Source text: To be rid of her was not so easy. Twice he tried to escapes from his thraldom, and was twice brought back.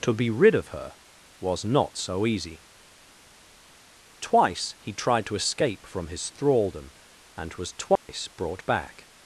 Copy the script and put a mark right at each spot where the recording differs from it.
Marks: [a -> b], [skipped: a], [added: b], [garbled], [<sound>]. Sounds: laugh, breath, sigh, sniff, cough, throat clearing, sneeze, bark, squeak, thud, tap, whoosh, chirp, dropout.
To be rid of her was not so easy. Twice he tried to [escapes -> escape] from his thraldom, and was twice [dropout] brought back.